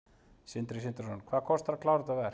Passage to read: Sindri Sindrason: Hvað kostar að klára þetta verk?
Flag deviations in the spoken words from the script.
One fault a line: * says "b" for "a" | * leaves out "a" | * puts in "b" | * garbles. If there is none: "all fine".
all fine